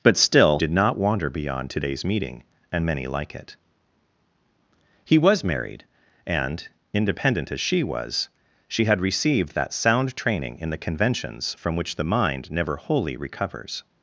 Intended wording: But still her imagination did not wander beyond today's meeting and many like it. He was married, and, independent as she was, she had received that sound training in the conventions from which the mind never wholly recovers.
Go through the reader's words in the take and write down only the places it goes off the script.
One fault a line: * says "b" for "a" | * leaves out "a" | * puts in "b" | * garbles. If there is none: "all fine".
* leaves out "her imagination"